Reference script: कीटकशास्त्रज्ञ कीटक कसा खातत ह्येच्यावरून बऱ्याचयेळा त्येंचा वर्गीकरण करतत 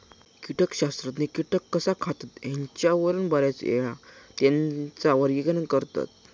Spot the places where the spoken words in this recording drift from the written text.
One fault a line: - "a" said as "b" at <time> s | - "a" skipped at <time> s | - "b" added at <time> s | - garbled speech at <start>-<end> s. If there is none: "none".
none